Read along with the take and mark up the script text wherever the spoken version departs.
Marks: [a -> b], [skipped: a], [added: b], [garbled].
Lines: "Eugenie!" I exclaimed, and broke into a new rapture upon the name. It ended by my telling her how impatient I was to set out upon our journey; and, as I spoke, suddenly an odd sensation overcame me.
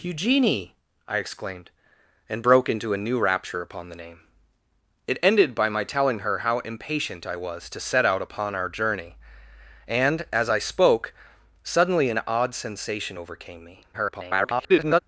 "Eugenie!" I exclaimed, and broke into a new rapture upon the name. It ended by my telling her how impatient I was to set out upon our journey; and, as I spoke, suddenly an odd sensation overcame me. [garbled]